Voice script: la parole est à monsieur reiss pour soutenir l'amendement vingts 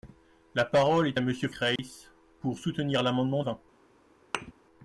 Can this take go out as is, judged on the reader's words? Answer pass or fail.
pass